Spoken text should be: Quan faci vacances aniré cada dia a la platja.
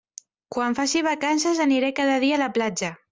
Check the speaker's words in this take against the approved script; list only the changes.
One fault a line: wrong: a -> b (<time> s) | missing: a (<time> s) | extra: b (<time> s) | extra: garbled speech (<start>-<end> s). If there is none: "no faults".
no faults